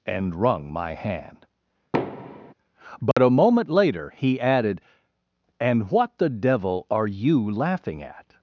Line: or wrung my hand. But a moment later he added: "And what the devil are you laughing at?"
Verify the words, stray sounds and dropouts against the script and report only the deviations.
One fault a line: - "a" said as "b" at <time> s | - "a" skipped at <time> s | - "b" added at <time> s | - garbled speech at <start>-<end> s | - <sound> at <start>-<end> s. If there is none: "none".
- "or" said as "and" at 0.1 s
- thud at 1.9-2.5 s
- dropout at 3.1-3.2 s